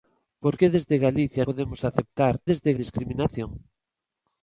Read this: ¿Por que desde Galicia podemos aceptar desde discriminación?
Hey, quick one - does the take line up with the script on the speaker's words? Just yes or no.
yes